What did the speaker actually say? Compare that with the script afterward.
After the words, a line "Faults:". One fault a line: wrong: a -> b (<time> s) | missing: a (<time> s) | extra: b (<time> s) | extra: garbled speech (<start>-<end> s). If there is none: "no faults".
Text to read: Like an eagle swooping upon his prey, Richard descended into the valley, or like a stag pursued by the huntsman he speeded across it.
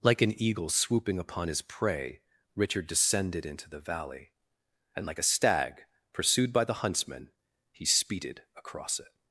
Like an eagle swooping upon his prey, Richard descended into the valley, and like a stag pursued by the huntsman he speeded across it.
Faults:
wrong: or -> and (4.9 s)